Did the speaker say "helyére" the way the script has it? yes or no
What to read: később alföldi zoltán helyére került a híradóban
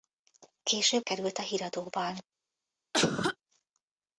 no